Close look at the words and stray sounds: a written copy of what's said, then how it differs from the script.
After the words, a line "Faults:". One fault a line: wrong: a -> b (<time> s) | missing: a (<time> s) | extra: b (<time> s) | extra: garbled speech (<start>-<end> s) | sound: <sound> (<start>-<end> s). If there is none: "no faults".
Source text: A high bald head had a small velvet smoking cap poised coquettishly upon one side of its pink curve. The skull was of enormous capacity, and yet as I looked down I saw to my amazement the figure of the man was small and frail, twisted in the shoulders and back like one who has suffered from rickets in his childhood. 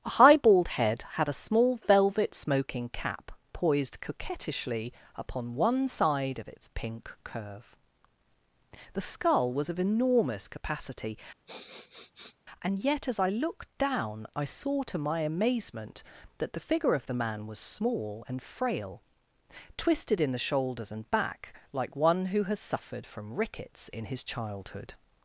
A high bald head had a small velvet smoking cap poised coquettishly upon one side of its pink curve. The skull was of enormous capacity, and yet as I looked down I saw to my amazement that the figure of the man was small and frail, twisted in the shoulders and back like one who has suffered from rickets in his childhood.
Faults:
sound: sniff (11.5-12.4 s)
extra: that (16.4 s)